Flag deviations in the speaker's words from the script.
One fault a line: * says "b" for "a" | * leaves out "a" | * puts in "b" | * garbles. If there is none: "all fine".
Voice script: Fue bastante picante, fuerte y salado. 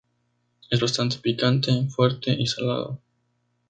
* says "Es" for "Fue"